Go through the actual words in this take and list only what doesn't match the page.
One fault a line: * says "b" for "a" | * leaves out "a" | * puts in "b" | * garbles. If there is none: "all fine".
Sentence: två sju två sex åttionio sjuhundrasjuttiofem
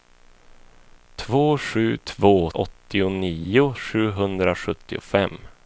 * leaves out "sex"